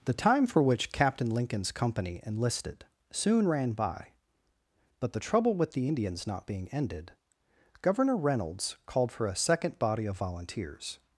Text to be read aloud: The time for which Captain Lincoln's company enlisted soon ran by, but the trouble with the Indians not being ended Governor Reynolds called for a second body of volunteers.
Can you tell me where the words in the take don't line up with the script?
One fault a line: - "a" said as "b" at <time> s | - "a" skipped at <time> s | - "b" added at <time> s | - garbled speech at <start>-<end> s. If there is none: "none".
none